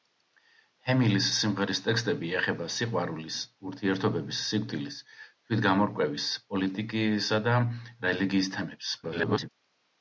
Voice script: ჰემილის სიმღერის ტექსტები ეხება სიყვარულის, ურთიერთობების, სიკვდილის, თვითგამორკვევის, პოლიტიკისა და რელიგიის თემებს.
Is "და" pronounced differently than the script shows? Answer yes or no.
no